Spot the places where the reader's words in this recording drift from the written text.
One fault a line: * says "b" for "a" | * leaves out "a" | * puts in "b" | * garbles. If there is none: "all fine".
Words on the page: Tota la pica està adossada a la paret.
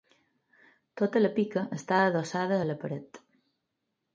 all fine